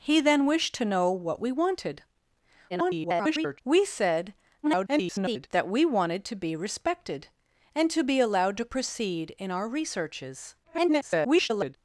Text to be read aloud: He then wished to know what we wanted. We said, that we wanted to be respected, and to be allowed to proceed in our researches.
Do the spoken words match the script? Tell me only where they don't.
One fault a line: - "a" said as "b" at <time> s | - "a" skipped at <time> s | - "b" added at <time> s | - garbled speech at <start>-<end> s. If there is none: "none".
- garbled speech at 2.7-3.6 s
- garbled speech at 4.6-5.5 s
- garbled speech at 10.6-11.8 s